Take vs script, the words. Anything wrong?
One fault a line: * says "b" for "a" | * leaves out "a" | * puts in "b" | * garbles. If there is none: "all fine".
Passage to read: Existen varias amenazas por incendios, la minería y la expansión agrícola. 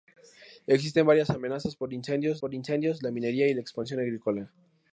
* puts in "por incendios"